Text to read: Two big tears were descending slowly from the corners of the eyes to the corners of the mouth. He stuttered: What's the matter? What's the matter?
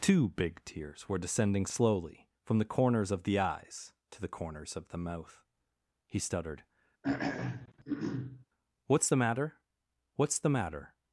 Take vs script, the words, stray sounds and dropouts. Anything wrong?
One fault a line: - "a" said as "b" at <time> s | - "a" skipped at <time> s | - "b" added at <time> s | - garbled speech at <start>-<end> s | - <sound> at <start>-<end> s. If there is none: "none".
- throat clearing at 7.0-8.4 s